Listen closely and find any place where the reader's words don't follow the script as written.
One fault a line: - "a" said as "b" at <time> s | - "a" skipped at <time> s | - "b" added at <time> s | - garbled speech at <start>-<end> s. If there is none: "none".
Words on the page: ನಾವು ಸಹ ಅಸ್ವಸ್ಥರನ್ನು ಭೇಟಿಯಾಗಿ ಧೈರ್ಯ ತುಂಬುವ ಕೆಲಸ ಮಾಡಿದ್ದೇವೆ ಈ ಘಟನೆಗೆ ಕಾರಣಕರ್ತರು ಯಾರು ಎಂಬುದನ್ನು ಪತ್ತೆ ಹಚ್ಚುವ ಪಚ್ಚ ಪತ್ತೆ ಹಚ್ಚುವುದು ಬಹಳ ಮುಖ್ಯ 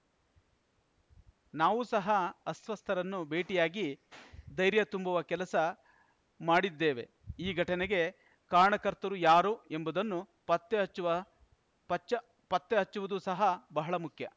- "ಸಹ" added at 13.2 s